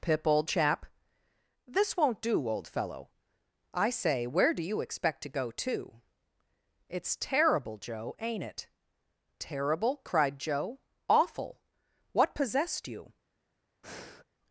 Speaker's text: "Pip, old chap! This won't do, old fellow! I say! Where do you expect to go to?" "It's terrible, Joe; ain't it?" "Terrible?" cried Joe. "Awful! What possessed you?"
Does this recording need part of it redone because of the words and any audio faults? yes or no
yes